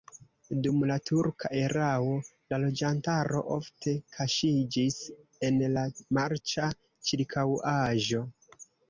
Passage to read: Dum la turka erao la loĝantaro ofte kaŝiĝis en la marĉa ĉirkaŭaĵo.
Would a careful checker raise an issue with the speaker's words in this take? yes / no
no